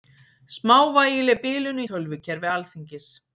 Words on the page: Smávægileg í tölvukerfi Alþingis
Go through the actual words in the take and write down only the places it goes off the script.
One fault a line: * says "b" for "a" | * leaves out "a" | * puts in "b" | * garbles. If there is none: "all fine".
* puts in "bilun"